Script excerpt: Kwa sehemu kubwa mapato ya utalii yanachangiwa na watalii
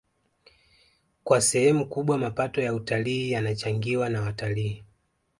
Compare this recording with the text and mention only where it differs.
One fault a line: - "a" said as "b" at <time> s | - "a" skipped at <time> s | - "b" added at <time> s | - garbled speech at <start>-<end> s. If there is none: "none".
none